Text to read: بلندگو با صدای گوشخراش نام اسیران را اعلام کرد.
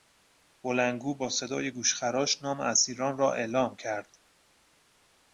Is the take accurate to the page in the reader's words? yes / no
yes